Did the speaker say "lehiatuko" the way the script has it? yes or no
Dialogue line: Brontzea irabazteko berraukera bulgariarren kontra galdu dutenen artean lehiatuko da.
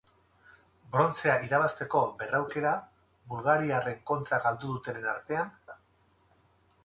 no